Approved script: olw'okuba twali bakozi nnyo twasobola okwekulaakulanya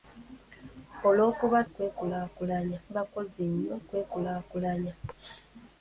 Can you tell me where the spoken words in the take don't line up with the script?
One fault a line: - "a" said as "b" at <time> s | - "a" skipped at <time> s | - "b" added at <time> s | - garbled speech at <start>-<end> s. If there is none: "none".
- "twali" said as "okwekulaakulanya" at 1.7 s
- "twasobola" skipped at 3.8 s